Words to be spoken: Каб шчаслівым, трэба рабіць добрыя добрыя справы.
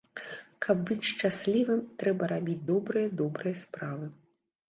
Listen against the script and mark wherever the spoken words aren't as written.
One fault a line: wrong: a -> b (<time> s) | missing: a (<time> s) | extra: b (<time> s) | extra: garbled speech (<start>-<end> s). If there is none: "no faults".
extra: быць (0.9 s)